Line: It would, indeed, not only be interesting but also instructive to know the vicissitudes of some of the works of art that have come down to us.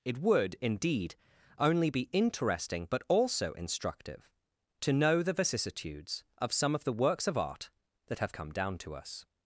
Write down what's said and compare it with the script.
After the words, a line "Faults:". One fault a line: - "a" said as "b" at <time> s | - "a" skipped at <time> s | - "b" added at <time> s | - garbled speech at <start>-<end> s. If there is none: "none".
It would, indeed, only be interesting but also instructive to know the vicissitudes of some of the works of art that have come down to us.
Faults:
- "not" skipped at 1.1 s